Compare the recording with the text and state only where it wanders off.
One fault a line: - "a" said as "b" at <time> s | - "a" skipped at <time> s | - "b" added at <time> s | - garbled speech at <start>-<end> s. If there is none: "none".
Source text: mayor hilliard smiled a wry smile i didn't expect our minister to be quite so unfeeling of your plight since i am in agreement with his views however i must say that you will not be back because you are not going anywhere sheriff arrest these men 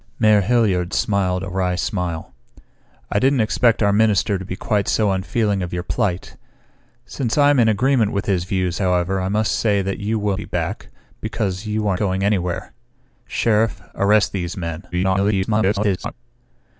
- "not" skipped at 10.4 s
- "not" skipped at 12.0 s
- garbled speech at 14.9-16.1 s